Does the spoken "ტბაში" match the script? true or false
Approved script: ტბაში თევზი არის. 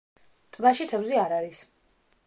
true